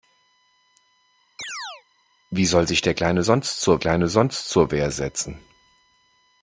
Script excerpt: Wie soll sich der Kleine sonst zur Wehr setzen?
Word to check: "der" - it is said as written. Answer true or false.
true